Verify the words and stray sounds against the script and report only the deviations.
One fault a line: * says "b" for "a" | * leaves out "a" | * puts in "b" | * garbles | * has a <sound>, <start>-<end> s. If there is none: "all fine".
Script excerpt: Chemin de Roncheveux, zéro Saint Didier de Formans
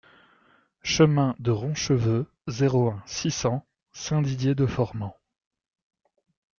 * puts in "un six cents"